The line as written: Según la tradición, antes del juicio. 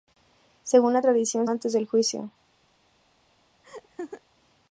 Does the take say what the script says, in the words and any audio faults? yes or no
no